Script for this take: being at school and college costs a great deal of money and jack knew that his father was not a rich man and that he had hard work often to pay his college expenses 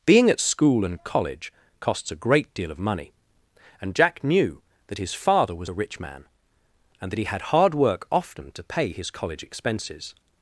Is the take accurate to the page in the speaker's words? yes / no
no